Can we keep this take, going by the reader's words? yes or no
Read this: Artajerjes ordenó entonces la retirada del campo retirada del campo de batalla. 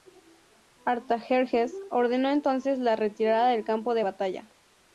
no